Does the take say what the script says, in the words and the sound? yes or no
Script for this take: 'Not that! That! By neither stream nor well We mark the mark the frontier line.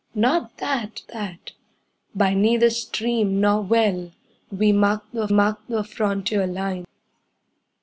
yes